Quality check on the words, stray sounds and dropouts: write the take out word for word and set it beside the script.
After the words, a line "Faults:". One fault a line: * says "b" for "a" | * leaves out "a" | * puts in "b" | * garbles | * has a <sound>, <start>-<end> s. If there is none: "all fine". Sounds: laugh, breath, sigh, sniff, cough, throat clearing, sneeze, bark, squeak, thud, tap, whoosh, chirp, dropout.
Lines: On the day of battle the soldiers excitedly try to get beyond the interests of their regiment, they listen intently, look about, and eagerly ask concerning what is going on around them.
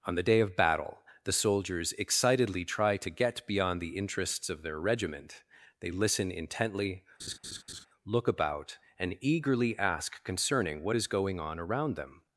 On the day of battle the soldiers excitedly try to get beyond the interests of their regiment, they listen intently, look about, and eagerly ask concerning what is going on around them.
Faults:
* has a laugh, 7.2-7.9 s